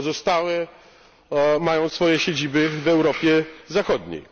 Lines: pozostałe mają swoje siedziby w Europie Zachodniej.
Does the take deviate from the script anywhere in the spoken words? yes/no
no